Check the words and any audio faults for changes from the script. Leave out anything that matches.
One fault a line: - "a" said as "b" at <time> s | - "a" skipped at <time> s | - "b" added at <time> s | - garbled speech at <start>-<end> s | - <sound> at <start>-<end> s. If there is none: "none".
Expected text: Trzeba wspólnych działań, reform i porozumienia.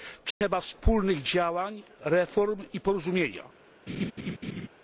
- dropout at 0.3-0.4 s
- laugh at 3.9-4.7 s